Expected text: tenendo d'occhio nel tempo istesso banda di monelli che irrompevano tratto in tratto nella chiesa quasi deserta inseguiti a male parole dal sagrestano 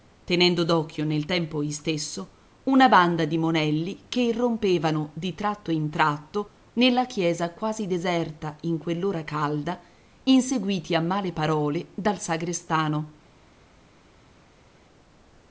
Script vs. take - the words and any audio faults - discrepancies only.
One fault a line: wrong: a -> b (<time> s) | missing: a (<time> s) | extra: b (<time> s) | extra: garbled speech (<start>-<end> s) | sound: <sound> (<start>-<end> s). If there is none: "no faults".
extra: una (2.6 s)
extra: di (5.1 s)
extra: in quell'ora calda (8.6 s)